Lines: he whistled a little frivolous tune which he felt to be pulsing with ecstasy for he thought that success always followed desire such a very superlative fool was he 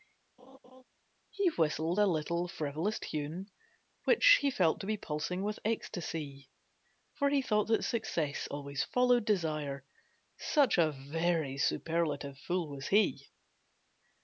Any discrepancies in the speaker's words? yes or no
no